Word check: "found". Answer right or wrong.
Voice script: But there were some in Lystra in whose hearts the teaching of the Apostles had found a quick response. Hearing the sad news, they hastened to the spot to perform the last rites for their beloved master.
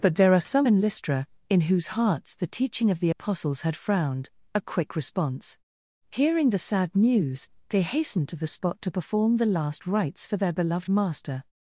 wrong